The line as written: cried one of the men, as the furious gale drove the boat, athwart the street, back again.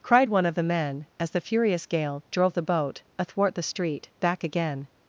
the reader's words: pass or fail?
pass